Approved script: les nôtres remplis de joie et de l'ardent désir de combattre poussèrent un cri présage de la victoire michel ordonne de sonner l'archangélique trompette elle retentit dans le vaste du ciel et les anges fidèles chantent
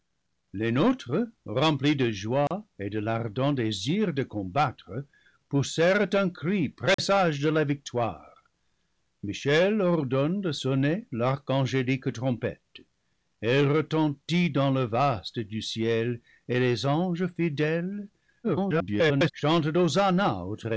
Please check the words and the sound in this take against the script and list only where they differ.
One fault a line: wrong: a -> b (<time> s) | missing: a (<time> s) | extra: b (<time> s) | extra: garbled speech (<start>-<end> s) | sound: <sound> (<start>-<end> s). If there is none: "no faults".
sound: dropout (2.5-2.5 s)
sound: dropout (6.9-7.0 s)
extra: garbled speech (18.4-19.3 s)